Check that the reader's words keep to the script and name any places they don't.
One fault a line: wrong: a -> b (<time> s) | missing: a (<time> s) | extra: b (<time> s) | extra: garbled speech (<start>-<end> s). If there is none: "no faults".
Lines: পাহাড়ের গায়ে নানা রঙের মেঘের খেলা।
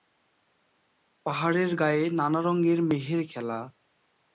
no faults